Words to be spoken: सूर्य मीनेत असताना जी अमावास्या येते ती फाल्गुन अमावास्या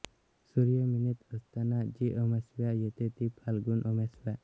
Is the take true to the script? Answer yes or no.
yes